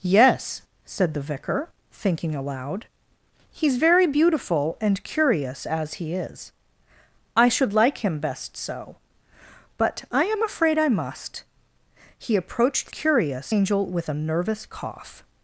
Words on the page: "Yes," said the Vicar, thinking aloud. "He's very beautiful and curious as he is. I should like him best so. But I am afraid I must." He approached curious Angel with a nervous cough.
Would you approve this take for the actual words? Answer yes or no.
yes